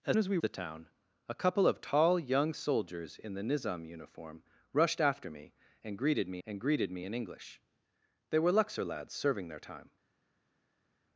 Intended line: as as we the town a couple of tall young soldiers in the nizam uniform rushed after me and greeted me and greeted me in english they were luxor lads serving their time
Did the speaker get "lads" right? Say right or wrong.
right